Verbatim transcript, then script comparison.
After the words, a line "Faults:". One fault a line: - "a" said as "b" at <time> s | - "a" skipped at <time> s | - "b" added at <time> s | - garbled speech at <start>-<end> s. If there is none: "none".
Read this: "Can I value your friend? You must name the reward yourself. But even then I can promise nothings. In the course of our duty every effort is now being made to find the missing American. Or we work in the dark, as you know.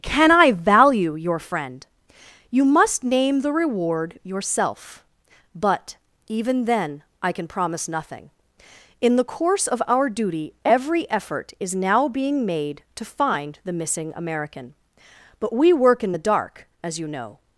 "Can I value your friend? You must name the reward yourself. But even then I can promise nothing. In the course of our duty every effort is now being made to find the missing American. But we work in the dark, as you know.
Faults:
- "nothings" said as "nothing" at 7.9 s
- "Or" said as "But" at 15.4 s